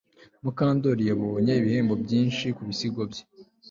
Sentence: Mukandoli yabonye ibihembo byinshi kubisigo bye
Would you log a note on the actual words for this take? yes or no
no